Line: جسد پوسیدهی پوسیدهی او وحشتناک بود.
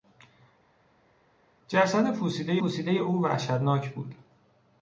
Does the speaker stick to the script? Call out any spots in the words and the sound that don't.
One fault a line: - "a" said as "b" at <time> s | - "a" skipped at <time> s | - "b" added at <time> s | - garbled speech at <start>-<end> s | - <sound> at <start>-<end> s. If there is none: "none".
none